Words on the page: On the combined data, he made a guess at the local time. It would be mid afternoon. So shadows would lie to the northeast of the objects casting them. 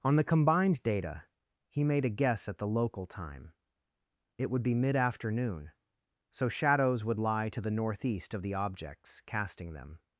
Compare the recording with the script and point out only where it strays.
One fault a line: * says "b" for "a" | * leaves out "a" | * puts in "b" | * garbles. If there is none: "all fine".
all fine